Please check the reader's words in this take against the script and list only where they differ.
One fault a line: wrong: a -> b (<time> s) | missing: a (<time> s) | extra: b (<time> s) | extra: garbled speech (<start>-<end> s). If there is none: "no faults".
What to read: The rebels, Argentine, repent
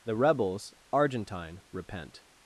no faults